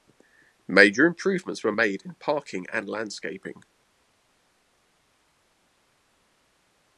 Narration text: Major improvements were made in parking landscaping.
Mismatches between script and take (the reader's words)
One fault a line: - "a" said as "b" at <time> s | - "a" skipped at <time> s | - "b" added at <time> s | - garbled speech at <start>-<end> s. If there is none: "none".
- "and" added at 2.7 s